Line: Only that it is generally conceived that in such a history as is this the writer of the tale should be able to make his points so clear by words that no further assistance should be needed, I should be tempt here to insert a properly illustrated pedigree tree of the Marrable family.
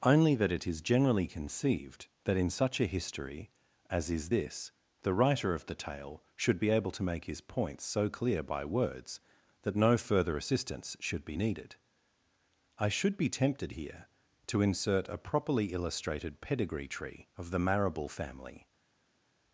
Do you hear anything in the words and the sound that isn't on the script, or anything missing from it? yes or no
yes